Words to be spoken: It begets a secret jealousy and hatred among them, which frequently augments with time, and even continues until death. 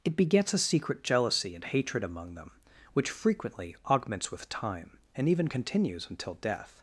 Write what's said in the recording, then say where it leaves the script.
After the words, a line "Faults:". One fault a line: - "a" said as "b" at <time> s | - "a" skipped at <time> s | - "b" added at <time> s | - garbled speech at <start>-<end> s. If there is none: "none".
It begets a secret jealousy and hatred among them, which frequently augments with time, and even continues until death.
Faults:
none